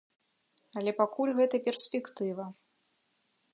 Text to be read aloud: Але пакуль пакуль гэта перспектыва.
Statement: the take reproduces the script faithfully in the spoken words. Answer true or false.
false